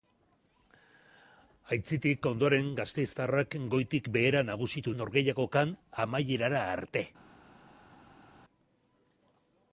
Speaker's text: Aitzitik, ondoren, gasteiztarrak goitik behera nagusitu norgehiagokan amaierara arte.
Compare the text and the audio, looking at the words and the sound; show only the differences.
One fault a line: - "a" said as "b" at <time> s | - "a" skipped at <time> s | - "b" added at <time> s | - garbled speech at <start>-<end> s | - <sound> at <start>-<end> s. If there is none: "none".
none